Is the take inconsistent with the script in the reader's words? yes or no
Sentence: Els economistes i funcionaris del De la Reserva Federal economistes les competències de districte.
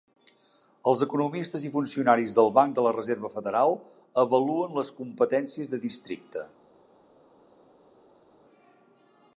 yes